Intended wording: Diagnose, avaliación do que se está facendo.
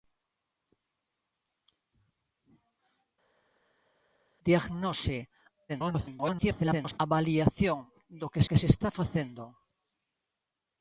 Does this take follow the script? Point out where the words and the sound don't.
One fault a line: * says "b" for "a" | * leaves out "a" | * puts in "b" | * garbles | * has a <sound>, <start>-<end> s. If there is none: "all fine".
* garbles
* puts in "que"